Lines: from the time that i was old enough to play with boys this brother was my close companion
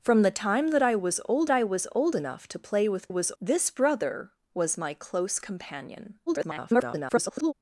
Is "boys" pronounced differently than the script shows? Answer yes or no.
yes